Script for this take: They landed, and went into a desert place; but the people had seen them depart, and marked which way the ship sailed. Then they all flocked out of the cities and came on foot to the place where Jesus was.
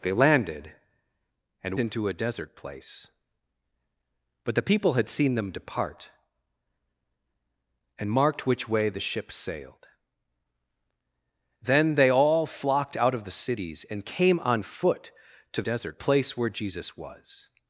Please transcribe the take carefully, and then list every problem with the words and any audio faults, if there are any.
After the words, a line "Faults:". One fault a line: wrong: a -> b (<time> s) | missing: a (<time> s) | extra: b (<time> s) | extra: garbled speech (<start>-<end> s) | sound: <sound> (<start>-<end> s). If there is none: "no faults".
They landed, and into a desert place; but the people had seen them depart, and marked which way the ship sailed. Then they all flocked out of the cities and came on foot to desert place where Jesus was.
Faults:
missing: went (1.8 s)
wrong: the -> desert (15.6 s)